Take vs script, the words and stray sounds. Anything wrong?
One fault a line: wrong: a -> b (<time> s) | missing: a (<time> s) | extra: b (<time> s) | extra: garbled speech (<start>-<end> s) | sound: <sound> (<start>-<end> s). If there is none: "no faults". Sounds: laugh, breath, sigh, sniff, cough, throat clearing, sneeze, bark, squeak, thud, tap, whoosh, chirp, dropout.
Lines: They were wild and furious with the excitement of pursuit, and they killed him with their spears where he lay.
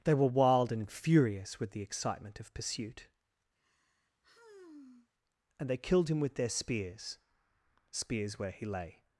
sound: sigh (3.6-5.1 s)
extra: spears (7.9 s)